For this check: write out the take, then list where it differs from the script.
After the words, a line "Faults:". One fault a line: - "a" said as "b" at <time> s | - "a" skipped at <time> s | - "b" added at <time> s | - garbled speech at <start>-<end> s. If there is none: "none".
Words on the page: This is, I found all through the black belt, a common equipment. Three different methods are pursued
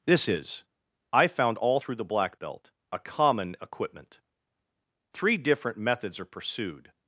This is, I found all through the black belt, a common equipment. Three different methods are pursued
Faults:
none